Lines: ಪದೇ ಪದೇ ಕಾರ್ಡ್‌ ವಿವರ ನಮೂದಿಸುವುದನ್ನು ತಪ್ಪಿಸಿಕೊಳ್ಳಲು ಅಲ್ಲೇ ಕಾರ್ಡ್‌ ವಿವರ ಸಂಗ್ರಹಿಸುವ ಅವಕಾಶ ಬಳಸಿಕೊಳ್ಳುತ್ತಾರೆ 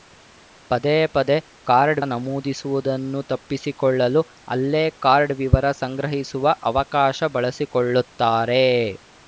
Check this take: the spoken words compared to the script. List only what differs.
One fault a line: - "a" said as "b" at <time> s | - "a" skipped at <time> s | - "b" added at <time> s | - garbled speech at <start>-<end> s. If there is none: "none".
- "ವಿವರ" skipped at 2.0 s